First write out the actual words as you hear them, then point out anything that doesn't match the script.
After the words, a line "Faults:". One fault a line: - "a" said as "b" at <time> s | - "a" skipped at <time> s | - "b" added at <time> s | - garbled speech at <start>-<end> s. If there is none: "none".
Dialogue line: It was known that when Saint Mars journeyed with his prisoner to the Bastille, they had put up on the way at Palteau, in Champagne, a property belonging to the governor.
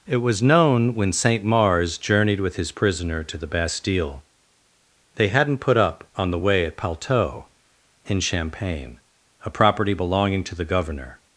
It was known when Saint Mars journeyed with his prisoner to the Bastille, they hadn't put up on the way at Palteau, in Champagne, a property belonging to the governor.
Faults:
- "that" skipped at 0.9 s
- "had" said as "hadn't" at 5.3 s